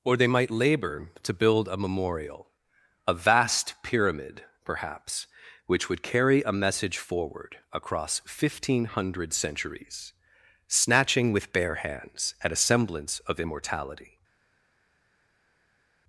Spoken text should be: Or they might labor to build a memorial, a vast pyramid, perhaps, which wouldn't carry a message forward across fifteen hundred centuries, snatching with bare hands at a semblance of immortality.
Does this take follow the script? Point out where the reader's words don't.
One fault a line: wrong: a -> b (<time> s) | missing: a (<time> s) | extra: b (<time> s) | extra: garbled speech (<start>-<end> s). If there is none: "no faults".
wrong: wouldn't -> would (5.9 s)